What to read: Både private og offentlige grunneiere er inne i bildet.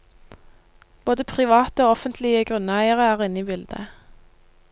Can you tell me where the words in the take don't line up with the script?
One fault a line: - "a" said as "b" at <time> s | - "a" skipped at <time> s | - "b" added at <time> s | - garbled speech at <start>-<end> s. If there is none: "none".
none